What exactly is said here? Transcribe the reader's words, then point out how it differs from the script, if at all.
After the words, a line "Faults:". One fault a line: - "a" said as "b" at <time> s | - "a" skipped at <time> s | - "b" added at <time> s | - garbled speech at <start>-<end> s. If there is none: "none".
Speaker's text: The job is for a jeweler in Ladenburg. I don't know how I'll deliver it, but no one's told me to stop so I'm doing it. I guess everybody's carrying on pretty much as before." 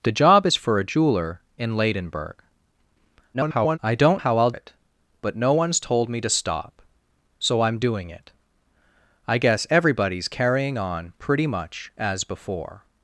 The job is for a jeweler in Ladenburg. [garbled] I don't how I'll it, but no one's told me to stop so I'm doing it. I guess everybody's carrying on pretty much as before."
Faults:
- garbled speech at 3.3-3.8 s
- "know" skipped at 4.2 s
- "deliver" skipped at 4.5 s